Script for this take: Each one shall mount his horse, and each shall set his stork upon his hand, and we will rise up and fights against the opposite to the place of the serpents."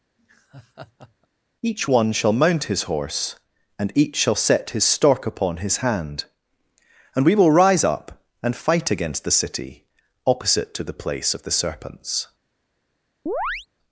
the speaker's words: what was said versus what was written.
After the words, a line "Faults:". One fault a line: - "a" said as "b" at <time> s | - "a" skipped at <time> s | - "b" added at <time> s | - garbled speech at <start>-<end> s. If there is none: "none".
Each one shall mount his horse, and each shall set his stork upon his hand, and we will rise up and fight against the city opposite to the place of the serpents."
Faults:
- "fights" said as "fight" at 8.5 s
- "city" added at 9.3 s